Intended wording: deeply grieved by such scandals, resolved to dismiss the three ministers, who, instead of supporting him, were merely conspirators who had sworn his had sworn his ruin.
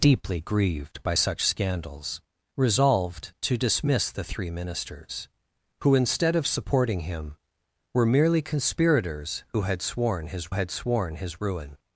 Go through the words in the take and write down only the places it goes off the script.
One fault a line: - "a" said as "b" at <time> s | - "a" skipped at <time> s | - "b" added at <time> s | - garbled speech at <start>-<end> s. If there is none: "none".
none